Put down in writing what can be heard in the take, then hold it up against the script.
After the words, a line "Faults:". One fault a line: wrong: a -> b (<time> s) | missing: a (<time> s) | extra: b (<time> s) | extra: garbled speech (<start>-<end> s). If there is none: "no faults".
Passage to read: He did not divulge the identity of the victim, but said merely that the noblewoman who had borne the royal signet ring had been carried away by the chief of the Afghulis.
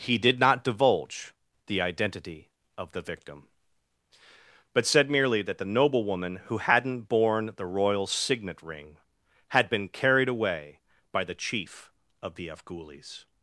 He did not divulge the identity of the victim, but said merely that the noblewoman who hadn't borne the royal signet ring had been carried away by the chief of the Afghulis.
Faults:
wrong: had -> hadn't (6.6 s)